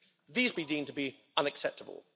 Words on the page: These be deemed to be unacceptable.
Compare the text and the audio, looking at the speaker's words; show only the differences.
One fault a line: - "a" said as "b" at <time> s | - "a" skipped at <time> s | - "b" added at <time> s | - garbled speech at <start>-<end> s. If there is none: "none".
none